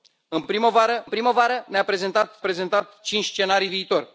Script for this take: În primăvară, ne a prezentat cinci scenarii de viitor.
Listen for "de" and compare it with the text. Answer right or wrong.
wrong